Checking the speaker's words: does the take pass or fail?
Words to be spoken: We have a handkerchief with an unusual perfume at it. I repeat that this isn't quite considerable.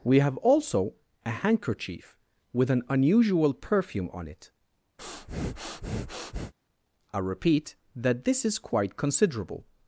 fail